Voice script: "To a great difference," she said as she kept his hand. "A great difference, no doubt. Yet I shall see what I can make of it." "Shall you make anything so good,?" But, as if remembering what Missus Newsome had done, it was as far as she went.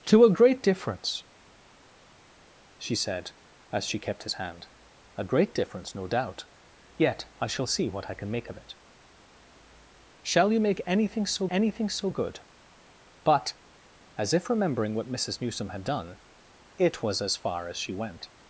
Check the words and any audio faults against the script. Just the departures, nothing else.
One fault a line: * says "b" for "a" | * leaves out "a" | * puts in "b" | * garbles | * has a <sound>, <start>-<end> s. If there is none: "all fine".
* puts in "anything so"